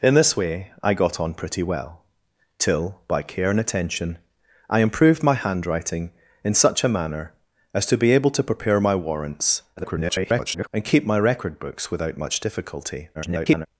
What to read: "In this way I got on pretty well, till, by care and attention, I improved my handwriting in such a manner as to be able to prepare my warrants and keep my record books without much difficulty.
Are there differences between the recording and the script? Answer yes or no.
yes